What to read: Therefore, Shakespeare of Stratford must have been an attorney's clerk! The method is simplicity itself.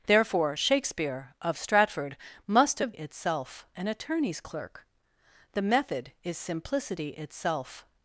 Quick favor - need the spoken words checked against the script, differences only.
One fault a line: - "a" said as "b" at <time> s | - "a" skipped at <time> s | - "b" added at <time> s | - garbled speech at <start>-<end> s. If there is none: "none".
- "been" said as "itself" at 2.9 s